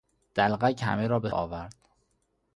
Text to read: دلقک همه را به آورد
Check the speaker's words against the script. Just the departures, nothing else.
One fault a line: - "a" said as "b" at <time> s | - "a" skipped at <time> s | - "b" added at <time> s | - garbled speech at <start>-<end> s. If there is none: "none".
none